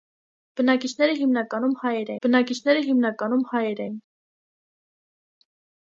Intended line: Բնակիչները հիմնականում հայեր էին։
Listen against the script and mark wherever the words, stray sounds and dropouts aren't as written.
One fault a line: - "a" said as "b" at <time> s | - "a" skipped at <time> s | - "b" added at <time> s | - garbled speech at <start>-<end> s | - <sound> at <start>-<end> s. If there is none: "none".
- "բնակիչները հիմնականում հայեր" added at 2.3 s